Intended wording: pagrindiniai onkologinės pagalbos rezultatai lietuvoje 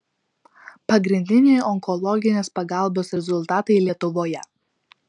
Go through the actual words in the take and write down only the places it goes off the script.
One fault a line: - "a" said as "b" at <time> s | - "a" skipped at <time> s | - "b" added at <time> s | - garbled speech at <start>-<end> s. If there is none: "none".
none